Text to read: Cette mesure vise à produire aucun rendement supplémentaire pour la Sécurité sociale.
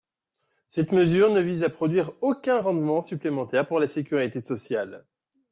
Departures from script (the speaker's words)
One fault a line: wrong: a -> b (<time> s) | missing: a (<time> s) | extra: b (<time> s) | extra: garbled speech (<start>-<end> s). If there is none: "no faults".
extra: ne (1.3 s)